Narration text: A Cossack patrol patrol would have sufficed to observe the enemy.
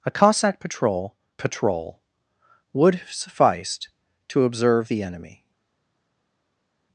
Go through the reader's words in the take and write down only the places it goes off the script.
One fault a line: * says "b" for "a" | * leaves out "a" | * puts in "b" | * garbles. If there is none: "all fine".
all fine